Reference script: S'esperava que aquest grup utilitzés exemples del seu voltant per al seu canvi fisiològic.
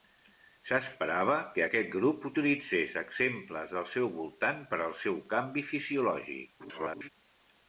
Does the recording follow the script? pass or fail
fail